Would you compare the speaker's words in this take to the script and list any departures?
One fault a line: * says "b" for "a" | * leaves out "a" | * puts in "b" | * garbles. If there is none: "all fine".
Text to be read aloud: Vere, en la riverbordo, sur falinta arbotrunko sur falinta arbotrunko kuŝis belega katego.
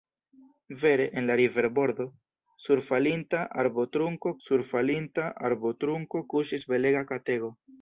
all fine